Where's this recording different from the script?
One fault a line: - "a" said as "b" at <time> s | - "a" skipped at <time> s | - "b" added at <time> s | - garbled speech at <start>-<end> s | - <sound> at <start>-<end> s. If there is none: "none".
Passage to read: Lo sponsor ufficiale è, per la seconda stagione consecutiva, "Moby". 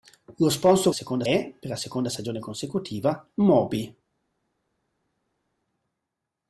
- "ufficiale" said as "seconda" at 0.9 s